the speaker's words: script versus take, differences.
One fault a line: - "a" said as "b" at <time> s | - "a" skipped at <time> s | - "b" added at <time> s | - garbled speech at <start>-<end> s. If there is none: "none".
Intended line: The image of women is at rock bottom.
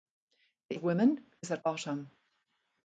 - "image" skipped at 0.8 s
- "rock" skipped at 1.7 s